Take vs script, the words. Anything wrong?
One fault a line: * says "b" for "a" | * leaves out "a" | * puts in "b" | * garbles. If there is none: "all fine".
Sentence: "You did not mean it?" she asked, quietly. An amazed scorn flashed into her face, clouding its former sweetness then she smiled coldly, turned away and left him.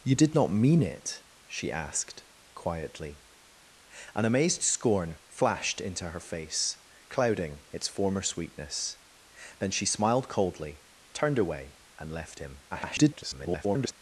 * garbles